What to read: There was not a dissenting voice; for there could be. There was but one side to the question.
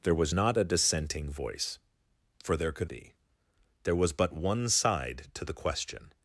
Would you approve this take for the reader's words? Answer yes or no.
yes